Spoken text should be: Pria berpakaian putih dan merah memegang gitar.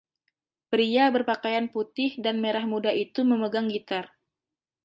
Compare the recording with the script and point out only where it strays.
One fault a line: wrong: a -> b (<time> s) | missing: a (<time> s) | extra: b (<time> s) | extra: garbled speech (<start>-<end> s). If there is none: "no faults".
extra: muda itu (2.6 s)